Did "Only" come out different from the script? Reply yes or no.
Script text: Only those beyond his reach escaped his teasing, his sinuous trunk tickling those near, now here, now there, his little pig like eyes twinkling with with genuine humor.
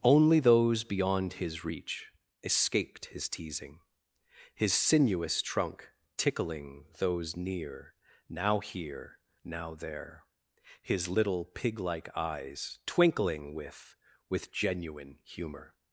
no